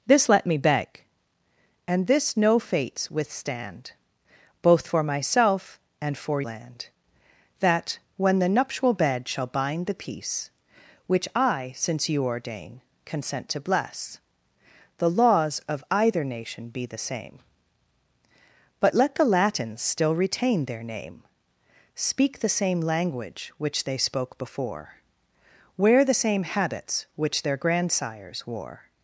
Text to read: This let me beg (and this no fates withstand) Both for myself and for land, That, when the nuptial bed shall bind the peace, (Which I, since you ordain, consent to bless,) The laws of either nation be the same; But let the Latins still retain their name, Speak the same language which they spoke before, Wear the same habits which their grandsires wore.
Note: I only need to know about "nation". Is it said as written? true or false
true